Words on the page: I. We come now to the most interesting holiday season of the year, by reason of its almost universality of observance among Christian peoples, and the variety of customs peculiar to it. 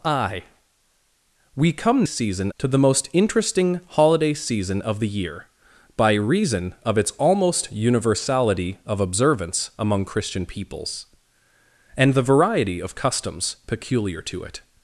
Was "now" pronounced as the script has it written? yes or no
no